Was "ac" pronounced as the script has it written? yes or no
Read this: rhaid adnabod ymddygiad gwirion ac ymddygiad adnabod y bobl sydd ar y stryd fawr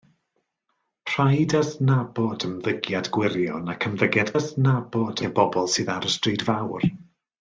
yes